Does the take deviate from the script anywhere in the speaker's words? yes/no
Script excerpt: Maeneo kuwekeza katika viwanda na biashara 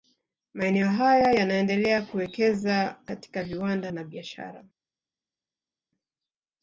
yes